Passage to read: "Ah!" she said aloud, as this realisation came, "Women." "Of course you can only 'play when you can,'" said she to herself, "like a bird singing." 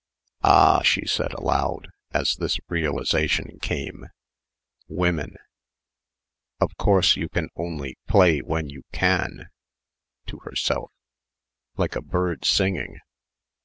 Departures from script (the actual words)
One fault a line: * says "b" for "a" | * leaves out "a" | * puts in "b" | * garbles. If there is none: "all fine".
* leaves out "said she"